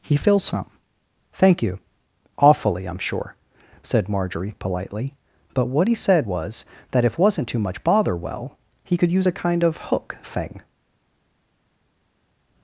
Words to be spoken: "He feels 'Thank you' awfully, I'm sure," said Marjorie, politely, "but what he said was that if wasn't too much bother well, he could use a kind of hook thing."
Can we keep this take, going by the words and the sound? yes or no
no